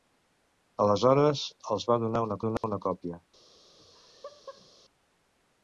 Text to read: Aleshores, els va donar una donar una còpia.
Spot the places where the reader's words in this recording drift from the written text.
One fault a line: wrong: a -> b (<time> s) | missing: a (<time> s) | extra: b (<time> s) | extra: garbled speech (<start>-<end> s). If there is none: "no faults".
no faults